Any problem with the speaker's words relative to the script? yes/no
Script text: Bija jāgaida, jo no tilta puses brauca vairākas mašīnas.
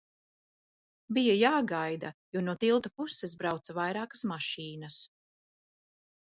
no